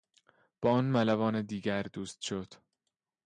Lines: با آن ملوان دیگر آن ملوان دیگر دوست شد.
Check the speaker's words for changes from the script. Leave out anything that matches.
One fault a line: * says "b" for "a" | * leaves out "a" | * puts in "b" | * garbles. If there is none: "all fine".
* leaves out "آن ملوان دیگر"